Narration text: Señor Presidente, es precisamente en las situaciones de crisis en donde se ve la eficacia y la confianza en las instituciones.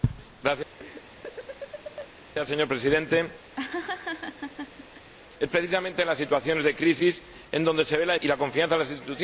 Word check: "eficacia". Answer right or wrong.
wrong